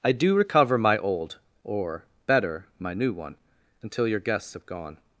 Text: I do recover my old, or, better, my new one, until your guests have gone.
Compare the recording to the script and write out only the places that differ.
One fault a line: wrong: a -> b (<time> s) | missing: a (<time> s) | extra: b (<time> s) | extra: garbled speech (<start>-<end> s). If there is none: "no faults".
no faults